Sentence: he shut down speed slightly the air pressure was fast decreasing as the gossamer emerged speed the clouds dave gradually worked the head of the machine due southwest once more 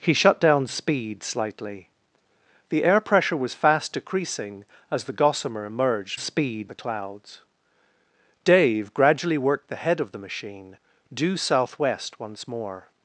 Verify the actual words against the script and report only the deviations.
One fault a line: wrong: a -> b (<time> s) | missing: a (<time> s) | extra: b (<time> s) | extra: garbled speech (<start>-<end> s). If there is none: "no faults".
no faults